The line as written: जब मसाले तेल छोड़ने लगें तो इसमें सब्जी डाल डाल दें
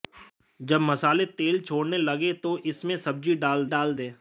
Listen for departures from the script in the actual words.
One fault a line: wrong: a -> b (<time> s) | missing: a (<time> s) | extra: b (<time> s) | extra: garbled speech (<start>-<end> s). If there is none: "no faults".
no faults